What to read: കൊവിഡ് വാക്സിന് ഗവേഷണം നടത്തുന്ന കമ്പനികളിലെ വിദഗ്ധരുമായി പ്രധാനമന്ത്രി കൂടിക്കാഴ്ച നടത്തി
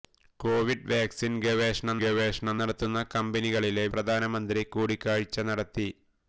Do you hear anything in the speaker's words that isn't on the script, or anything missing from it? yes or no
yes